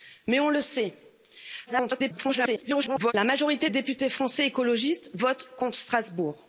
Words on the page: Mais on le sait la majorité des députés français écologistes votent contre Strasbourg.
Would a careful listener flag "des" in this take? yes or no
yes